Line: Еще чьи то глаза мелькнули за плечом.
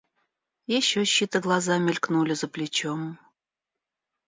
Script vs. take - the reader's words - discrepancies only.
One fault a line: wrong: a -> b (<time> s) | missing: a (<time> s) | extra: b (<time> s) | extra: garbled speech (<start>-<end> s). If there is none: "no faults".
no faults